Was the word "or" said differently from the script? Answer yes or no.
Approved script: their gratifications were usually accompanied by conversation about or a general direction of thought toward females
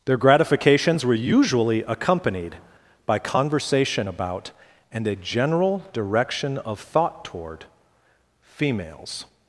yes